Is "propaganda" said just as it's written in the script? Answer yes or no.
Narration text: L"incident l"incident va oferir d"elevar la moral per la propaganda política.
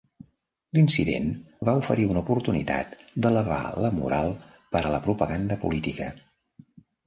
yes